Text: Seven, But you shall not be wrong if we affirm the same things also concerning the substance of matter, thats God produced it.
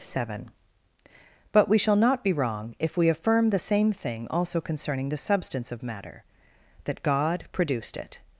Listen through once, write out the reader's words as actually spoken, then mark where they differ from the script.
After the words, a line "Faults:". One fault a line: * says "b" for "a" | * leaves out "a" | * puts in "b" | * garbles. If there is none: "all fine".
Seven, But we shall not be wrong if we affirm the same thing also concerning the substance of matter, that God produced it.
Faults:
* says "we" for "you"
* says "thing" for "things"
* says "that" for "thats"